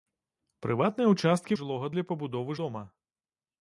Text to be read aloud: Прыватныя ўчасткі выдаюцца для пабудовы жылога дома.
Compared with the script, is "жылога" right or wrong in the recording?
wrong